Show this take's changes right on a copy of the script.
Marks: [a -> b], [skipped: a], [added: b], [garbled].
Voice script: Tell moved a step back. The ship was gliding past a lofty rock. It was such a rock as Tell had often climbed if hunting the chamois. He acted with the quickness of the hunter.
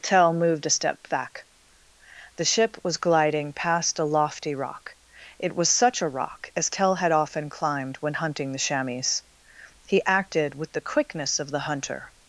Tell moved a step back. The ship was gliding past a lofty rock. It was such a rock as Tell had often climbed [if -> when] hunting the chamois. He acted with the quickness of the hunter.